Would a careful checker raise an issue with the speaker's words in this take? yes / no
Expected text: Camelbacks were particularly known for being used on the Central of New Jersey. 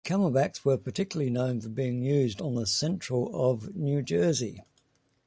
no